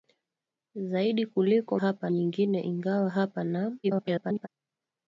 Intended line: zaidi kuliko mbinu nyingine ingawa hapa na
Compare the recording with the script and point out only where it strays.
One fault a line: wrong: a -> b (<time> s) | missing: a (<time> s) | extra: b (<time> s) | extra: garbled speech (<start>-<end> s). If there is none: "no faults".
wrong: mbinu -> hapa (1.8 s)
extra: garbled speech (3.8-4.5 s)